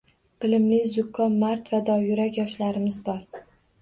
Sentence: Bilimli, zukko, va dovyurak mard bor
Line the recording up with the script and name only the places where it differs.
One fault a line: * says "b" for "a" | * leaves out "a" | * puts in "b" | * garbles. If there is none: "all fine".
* puts in "mard"
* says "yoshlarimiz" for "mard"